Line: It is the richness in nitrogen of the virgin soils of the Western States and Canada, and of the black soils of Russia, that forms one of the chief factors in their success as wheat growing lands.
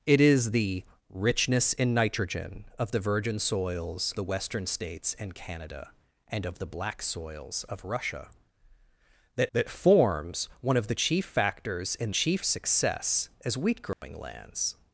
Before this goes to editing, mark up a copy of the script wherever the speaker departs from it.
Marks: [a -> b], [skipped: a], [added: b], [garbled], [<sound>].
It is the richness in nitrogen of the virgin soils [skipped: of] the Western States and Canada, and of the black soils of Russia, that [added: that] forms one of the chief factors in [their -> chief] success as wheat growing [dropout] lands.